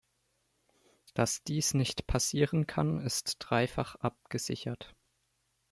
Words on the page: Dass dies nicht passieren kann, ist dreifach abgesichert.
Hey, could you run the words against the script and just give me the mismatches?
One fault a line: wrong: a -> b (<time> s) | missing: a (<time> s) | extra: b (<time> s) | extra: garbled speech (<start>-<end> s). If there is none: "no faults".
no faults